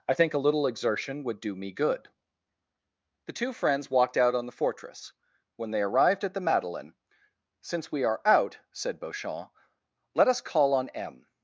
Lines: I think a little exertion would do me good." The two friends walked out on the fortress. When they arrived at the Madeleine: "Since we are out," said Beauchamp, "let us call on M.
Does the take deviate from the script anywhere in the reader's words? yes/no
no